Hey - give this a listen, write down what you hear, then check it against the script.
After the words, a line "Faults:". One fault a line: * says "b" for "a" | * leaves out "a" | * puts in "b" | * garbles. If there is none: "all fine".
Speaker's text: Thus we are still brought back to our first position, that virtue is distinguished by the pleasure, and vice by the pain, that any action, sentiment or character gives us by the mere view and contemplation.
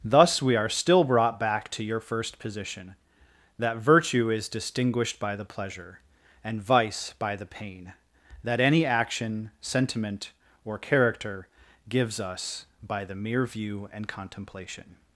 Thus we are still brought back to your first position, that virtue is distinguished by the pleasure, and vice by the pain, that any action, sentiment or character gives us by the mere view and contemplation.
Faults:
* says "your" for "our"